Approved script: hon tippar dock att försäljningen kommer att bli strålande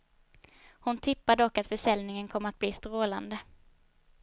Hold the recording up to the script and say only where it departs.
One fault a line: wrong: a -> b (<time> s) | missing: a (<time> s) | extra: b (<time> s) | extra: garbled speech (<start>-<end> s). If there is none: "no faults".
no faults